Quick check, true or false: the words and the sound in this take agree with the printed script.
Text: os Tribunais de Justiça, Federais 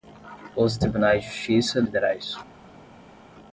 true